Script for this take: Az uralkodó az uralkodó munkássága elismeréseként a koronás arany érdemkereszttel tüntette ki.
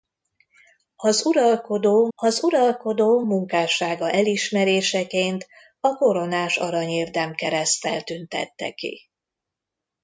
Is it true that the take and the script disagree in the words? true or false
false